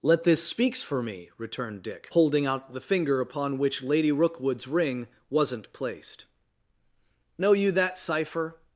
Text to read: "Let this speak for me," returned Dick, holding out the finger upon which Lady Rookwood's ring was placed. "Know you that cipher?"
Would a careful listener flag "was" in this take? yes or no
yes